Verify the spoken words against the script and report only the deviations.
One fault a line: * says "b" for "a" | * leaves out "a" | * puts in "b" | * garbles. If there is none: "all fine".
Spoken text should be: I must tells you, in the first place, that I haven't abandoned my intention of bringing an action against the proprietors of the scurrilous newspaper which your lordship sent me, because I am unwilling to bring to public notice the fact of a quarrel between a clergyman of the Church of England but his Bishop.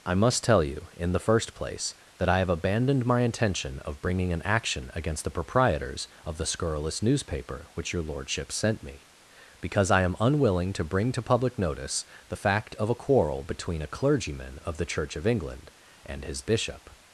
* says "tell" for "tells"
* says "have" for "haven't"
* says "and" for "but"